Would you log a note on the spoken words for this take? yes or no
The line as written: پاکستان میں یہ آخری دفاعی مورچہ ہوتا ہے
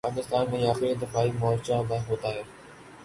no